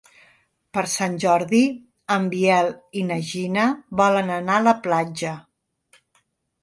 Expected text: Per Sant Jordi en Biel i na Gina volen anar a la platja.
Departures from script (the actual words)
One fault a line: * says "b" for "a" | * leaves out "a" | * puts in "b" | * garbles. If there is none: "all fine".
all fine